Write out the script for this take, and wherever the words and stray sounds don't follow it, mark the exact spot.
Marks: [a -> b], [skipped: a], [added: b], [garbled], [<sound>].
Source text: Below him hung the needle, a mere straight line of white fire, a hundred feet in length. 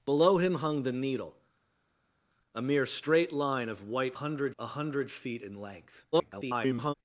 Below him hung the needle, a mere straight line of white [fire, -> hundred] a hundred feet in length. [garbled]